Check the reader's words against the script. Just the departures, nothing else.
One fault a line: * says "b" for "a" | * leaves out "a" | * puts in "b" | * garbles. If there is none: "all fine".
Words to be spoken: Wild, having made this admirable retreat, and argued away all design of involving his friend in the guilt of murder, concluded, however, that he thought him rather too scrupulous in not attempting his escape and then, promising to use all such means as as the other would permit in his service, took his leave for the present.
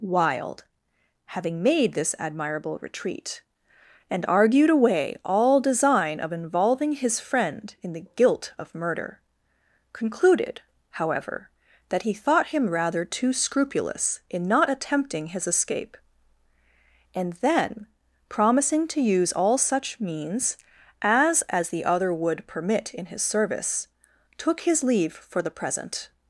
all fine